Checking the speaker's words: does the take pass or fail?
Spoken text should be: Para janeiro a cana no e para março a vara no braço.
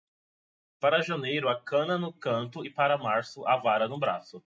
fail